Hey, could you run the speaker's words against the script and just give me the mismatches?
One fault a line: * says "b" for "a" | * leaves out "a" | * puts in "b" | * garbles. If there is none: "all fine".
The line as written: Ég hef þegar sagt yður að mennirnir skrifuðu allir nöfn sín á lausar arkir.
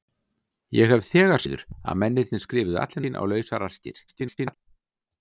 * leaves out "sagt"
* leaves out "nöfn"
* garbles